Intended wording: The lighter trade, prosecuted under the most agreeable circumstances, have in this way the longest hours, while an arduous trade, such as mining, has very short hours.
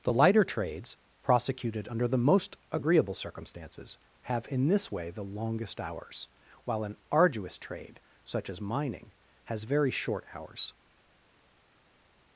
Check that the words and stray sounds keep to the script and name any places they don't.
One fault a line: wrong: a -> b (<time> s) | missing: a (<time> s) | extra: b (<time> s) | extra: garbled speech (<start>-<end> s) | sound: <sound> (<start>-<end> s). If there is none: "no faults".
wrong: trade -> trades (0.4 s)